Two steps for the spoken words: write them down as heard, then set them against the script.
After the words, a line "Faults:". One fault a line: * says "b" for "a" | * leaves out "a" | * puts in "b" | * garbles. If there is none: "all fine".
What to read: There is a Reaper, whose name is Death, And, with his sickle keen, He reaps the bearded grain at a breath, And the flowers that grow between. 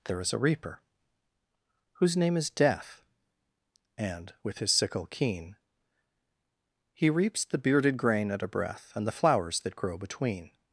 There is a Reaper, whose name is Death, And, with his sickle keen, He reaps the bearded grain at a breath, And the flowers that grow between.
Faults:
all fine